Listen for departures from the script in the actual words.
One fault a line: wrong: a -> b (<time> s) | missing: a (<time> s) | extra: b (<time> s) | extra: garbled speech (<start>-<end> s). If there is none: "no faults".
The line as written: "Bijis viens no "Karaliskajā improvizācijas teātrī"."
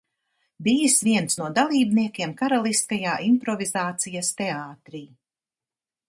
extra: dalībniekiem (1.6 s)